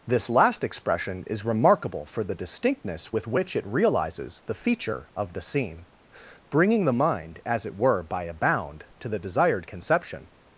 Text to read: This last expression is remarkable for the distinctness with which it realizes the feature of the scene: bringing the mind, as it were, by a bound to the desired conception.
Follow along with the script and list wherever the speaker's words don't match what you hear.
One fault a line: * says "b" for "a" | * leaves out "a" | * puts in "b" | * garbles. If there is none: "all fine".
all fine